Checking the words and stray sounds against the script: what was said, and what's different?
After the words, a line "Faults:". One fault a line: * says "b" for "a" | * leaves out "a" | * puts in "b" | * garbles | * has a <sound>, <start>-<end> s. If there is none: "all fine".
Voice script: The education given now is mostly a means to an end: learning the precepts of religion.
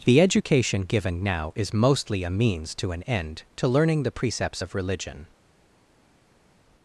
The education given now is mostly a means to an end: to learning the precepts of religion.
Faults:
* puts in "to"